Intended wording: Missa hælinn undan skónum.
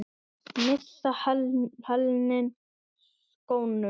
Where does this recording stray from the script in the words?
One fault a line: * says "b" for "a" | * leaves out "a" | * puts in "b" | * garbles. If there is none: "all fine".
* leaves out "undan"